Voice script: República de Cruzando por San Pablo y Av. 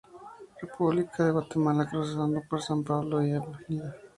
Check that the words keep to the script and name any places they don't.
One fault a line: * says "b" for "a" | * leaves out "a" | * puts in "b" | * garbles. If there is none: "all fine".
* puts in "Guatemala"